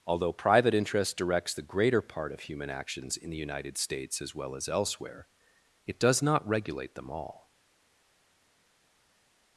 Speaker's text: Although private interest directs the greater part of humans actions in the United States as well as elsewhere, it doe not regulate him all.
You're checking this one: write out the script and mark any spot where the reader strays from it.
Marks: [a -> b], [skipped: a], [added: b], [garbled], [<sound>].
Although private interest directs the greater part of [humans -> human] actions in the United States as well as elsewhere, it [doe -> does] not regulate [him -> them] all.